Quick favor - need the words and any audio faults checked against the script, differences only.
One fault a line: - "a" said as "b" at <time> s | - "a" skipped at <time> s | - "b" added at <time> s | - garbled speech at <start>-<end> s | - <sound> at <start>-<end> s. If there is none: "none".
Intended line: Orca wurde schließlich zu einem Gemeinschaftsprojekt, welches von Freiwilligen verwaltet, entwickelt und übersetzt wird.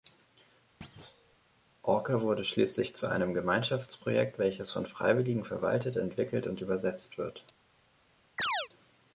- thud at 0.8-1.4 s
- chirp at 8.4-8.7 s